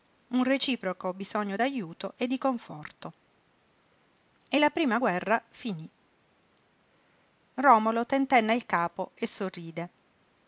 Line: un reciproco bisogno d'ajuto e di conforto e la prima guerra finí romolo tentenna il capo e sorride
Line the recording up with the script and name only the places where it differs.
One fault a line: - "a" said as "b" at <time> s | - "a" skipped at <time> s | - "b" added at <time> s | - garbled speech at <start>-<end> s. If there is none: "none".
none